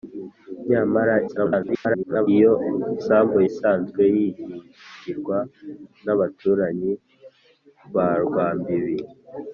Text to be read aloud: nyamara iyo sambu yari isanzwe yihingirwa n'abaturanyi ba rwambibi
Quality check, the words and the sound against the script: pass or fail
fail